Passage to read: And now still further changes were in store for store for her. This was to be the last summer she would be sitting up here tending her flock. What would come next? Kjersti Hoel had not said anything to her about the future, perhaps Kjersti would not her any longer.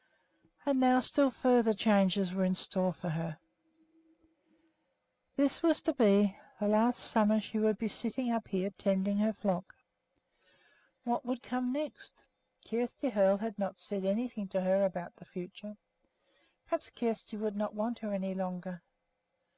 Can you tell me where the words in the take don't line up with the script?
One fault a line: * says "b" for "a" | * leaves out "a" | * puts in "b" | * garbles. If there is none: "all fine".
* leaves out "store for"
* puts in "want"